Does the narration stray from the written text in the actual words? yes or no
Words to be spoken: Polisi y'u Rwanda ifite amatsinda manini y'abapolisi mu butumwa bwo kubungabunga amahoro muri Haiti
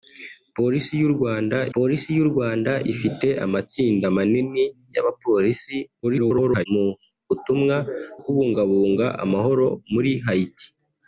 yes